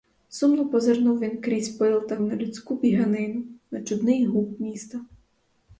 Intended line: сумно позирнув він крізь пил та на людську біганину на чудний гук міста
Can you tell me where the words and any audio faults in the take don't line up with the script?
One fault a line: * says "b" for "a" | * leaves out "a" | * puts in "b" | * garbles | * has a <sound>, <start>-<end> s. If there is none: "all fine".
all fine